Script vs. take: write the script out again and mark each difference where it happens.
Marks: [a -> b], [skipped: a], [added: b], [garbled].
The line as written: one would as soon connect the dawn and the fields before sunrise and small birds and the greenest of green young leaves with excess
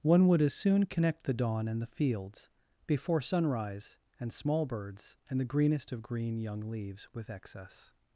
one would as soon connect the dawn and the fields before sunrise and small birds and the greenest of green young leaves with excess